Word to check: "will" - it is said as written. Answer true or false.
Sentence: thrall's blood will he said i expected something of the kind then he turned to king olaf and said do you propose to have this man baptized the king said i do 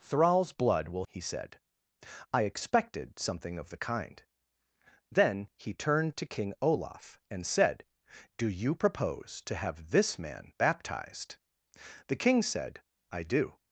true